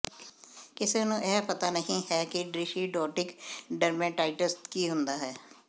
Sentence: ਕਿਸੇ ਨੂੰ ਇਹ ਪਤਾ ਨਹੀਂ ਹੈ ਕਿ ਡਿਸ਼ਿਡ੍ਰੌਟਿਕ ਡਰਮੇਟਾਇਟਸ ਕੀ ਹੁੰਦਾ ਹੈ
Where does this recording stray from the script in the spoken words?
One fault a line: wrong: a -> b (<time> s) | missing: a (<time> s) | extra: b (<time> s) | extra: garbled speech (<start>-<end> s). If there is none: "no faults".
no faults